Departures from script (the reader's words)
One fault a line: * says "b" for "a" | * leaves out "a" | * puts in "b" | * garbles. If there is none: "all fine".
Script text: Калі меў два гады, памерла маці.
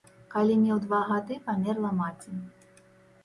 all fine